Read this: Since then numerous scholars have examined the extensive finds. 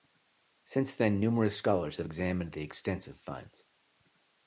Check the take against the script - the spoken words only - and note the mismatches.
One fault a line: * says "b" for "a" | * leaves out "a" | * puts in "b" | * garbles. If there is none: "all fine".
all fine